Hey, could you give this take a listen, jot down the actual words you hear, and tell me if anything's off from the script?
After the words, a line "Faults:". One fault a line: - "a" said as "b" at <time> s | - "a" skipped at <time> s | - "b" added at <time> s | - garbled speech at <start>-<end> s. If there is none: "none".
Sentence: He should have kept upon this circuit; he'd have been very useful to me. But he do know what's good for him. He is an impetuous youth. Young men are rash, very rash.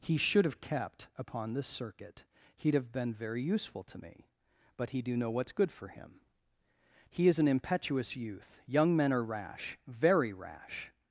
He should have kept upon this circuit; he'd have been very useful to me. But he do know what's good for him. He is an impetuous youth. Young men are rash, very rash.
Faults:
none